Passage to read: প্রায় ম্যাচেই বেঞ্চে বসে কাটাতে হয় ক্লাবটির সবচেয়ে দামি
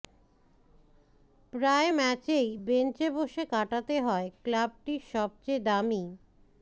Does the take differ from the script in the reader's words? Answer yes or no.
no